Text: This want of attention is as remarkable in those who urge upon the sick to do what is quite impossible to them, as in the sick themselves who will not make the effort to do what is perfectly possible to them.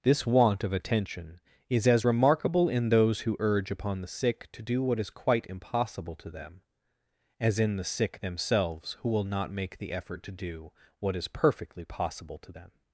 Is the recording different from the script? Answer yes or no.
no